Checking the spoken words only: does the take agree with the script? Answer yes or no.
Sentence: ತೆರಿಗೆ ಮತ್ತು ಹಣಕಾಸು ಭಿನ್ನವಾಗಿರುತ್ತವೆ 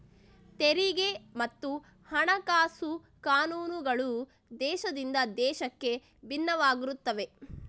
no